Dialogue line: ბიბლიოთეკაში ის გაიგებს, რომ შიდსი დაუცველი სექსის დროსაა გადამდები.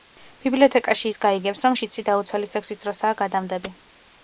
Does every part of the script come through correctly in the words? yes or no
yes